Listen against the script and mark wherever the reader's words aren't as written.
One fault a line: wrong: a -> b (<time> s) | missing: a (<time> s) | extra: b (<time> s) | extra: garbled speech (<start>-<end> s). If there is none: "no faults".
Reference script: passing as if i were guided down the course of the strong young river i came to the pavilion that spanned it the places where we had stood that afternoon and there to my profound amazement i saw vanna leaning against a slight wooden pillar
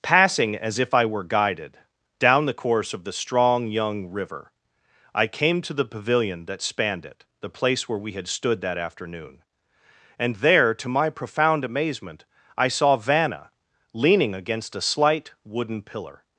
wrong: places -> place (7.5 s)